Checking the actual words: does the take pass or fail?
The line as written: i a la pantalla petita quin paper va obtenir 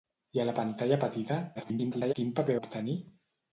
fail